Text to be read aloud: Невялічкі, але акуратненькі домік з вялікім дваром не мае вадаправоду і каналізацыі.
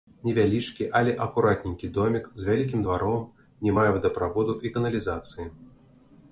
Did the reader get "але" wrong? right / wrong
right